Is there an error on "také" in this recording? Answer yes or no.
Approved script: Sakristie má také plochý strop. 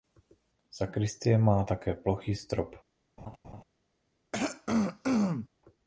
no